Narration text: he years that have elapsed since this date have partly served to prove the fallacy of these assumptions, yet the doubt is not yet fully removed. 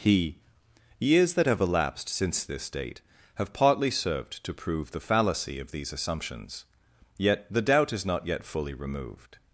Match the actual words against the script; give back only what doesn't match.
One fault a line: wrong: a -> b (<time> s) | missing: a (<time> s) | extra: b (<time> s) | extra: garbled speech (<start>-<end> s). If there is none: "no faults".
no faults